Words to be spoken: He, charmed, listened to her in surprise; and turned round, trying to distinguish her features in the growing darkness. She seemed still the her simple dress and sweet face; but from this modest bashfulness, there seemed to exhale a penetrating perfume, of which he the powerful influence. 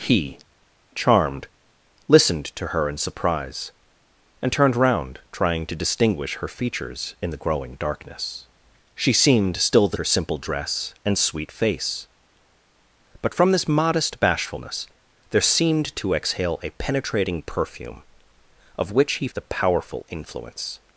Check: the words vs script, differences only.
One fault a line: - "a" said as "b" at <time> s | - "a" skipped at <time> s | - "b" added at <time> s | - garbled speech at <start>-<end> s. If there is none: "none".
none